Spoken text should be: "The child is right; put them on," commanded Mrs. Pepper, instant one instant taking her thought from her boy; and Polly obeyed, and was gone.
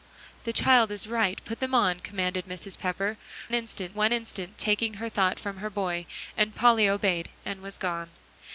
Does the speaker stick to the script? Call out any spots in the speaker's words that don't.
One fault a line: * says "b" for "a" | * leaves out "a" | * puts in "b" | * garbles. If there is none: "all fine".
all fine